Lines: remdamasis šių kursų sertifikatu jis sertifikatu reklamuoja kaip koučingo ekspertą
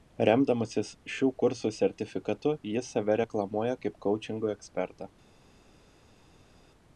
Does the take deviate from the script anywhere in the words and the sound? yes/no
yes